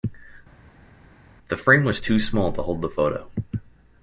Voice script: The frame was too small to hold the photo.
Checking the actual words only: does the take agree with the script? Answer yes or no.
yes